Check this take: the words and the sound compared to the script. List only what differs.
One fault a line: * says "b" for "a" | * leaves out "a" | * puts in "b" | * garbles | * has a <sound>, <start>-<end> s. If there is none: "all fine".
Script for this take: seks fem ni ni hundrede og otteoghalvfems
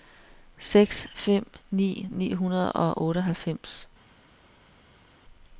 all fine